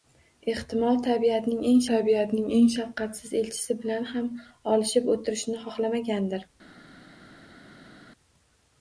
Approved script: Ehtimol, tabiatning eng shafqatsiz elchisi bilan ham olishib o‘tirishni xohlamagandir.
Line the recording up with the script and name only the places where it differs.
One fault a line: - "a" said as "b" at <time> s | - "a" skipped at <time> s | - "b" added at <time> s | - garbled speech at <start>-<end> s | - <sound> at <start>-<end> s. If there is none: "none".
- "tabiatning eng" added at 1.9 s